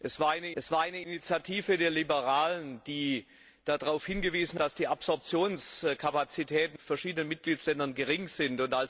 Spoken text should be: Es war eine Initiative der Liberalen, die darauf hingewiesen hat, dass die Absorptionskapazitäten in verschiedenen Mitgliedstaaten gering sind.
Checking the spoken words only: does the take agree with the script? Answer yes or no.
no